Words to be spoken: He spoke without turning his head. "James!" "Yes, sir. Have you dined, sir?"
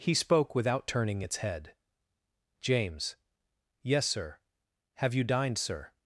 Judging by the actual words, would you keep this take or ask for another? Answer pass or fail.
fail